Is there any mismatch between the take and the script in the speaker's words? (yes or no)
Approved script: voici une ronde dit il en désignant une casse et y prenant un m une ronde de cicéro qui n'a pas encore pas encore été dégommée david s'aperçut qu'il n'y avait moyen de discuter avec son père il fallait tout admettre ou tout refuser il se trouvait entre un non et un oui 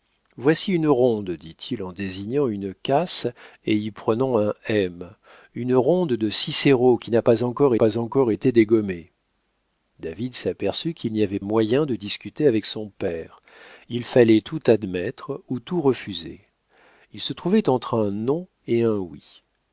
no